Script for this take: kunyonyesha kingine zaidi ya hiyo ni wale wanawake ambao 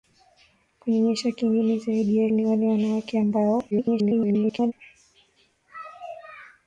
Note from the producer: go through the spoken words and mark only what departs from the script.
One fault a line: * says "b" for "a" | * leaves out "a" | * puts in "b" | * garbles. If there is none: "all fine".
* leaves out "hiyo"
* garbles